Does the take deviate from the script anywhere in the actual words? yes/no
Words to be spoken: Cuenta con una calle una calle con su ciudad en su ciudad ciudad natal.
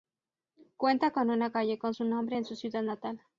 yes